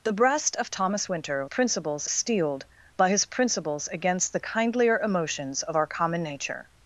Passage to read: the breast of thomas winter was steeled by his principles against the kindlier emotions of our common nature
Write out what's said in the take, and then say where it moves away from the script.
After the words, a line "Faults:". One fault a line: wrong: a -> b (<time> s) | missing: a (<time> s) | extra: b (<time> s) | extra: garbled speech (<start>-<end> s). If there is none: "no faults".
the breast of thomas winter principles steeled by his principles against the kindlier emotions of our common nature
Faults:
wrong: was -> principles (1.4 s)